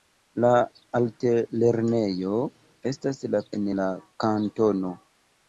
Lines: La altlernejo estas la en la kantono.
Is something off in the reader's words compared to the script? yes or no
no